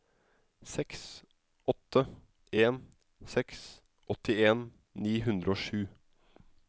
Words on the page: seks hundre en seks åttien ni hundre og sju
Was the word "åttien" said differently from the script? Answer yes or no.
no